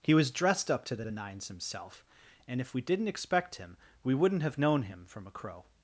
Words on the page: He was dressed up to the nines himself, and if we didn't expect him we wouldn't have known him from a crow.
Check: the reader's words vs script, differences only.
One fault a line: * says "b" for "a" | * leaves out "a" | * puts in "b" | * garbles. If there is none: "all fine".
* puts in "the"